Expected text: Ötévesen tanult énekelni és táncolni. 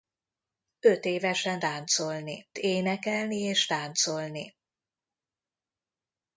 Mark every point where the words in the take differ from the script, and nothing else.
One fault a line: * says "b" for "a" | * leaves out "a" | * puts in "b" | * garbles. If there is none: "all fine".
* says "táncolni" for "tanult"